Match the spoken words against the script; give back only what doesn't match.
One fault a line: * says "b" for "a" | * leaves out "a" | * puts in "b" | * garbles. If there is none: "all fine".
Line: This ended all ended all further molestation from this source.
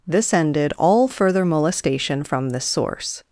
* leaves out "ended all"